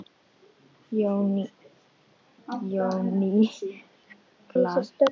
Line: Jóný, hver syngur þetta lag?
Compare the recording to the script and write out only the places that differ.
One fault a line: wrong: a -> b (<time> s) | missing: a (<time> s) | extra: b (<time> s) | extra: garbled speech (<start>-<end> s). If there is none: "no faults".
missing: hver syngur þetta (1.4 s)